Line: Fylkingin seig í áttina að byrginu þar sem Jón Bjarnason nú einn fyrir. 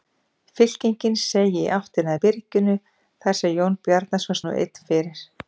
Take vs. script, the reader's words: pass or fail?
pass